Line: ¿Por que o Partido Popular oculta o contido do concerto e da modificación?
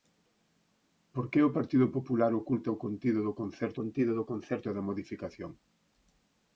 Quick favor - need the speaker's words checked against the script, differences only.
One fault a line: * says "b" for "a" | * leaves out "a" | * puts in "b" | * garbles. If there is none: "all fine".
* puts in "contido do concerto"